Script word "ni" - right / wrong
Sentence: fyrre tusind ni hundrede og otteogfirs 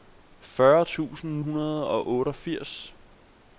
wrong